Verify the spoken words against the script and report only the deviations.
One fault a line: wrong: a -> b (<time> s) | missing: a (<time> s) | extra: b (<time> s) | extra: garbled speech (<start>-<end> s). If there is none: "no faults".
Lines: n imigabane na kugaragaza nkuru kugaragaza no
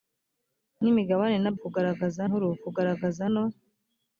no faults